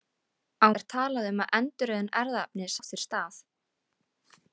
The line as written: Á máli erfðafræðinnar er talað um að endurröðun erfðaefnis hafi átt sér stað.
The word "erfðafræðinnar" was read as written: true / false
false